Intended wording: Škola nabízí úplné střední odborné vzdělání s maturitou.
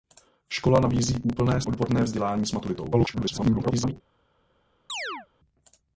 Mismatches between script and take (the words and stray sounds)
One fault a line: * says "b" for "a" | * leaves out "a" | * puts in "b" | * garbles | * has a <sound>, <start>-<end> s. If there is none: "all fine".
* leaves out "střední"
* garbles
* has a chirp, 4.9-5.3 s